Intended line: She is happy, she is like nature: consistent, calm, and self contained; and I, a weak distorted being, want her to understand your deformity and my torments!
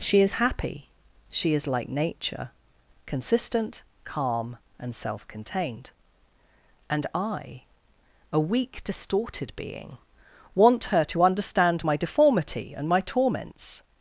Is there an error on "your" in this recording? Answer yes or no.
yes